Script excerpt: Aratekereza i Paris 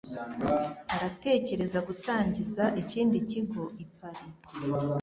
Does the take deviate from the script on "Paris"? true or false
false